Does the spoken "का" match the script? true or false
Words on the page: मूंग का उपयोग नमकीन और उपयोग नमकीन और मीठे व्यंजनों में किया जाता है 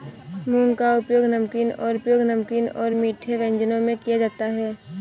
true